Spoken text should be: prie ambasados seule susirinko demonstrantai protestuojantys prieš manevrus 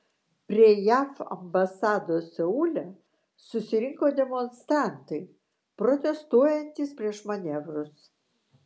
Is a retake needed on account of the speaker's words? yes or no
yes